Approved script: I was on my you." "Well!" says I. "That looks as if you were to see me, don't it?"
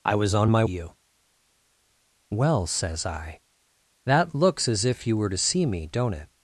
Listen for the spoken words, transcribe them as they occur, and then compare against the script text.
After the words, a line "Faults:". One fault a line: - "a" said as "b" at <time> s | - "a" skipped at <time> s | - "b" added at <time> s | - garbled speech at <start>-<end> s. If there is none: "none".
I was on my you." "Well!" says I. "That looks as if you were to see me, don't it?"
Faults:
none